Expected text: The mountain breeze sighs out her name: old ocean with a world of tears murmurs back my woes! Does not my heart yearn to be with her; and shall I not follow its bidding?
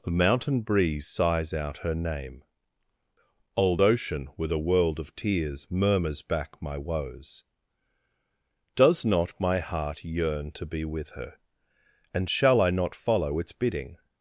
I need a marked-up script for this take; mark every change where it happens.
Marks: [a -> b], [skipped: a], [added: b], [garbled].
The mountain breeze sighs out her name: old ocean with a world of tears murmurs back my woes! Does not my heart yearn to be with her; and shall I not follow its bidding?